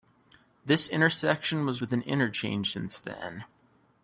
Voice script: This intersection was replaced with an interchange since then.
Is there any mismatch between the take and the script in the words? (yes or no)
yes